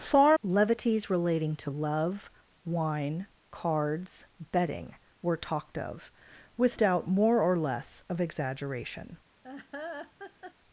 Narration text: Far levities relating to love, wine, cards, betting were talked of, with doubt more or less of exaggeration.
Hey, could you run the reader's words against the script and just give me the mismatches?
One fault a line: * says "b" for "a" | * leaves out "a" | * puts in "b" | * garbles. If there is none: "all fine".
all fine